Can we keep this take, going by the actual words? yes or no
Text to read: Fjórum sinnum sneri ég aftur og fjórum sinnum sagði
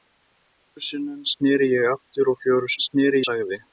no